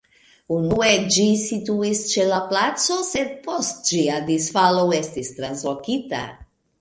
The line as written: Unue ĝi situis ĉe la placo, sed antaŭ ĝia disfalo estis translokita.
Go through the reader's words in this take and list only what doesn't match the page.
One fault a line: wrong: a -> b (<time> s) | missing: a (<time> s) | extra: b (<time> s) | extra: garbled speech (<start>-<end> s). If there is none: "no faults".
wrong: antaŭ -> post (3.5 s)